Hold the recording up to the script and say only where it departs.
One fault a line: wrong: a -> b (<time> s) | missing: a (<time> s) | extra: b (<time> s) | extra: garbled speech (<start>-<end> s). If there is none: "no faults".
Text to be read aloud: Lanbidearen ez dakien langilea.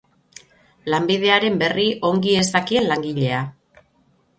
extra: berri ongi (1.6 s)